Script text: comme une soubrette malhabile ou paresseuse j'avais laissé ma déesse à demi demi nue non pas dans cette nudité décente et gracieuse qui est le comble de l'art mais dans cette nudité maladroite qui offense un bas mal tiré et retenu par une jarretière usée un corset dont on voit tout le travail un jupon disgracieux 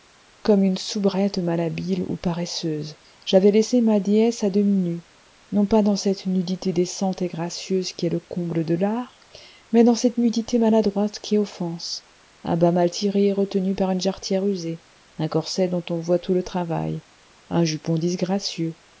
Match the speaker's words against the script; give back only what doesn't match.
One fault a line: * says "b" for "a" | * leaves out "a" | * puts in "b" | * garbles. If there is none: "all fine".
* leaves out "demi"